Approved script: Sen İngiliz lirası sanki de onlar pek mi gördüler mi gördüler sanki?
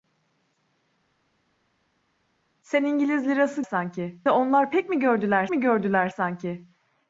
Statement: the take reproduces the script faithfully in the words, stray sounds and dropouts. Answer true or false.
true